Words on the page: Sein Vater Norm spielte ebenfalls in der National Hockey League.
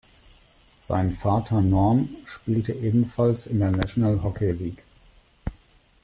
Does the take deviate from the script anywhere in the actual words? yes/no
no